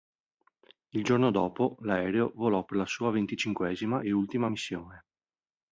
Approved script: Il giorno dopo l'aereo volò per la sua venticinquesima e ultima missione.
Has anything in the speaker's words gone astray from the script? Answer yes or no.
no